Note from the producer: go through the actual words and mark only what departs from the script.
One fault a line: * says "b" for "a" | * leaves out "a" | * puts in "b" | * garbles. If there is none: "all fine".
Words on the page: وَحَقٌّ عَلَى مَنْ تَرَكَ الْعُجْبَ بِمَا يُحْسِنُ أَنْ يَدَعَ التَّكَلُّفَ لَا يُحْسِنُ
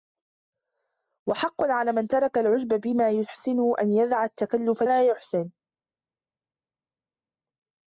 all fine